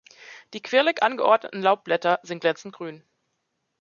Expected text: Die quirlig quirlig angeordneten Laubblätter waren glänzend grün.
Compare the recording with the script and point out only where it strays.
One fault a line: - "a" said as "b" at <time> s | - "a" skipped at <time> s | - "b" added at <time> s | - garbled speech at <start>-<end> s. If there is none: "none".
- "quirlig" skipped at 1.0 s
- "waren" said as "sind" at 2.2 s